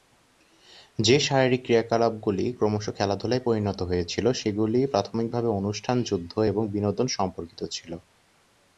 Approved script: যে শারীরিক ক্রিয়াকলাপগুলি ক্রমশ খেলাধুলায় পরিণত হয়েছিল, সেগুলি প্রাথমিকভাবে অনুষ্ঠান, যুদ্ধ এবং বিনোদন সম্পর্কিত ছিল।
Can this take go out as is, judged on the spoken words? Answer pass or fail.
pass